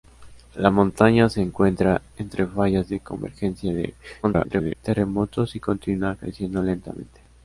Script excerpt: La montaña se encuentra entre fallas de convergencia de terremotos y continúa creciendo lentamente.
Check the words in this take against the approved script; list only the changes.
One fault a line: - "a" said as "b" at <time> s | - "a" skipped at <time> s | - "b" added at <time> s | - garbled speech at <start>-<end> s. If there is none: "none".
- garbled speech at 4.2-4.7 s